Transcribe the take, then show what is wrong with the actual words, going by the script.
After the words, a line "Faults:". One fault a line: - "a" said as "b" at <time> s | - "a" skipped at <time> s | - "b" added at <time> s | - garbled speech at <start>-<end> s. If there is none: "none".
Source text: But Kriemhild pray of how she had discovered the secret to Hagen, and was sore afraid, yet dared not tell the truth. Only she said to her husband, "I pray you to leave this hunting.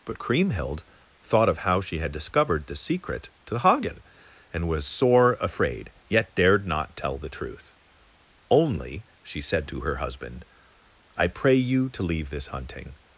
But Kriemhild thought of how she had discovered the secret to Hagen, and was sore afraid, yet dared not tell the truth. Only she said to her husband, "I pray you to leave this hunting.
Faults:
- "pray" said as "thought" at 1.2 s